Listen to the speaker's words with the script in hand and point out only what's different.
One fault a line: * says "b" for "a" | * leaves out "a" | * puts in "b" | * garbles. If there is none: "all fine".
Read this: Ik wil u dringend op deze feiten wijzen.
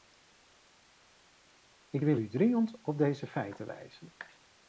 all fine